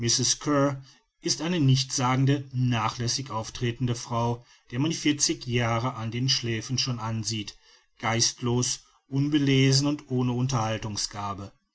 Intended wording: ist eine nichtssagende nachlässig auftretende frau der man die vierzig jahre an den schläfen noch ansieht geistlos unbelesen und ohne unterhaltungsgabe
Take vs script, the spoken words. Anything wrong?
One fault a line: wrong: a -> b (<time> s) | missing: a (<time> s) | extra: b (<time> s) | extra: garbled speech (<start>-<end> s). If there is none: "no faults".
wrong: noch -> schon (6.8 s)